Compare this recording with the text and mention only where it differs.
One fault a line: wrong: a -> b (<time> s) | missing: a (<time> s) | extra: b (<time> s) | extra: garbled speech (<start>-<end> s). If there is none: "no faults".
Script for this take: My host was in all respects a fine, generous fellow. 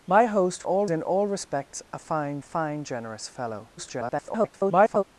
wrong: was -> all (0.6 s)
extra: fine (2.4 s)
extra: garbled speech (3.8-5.0 s)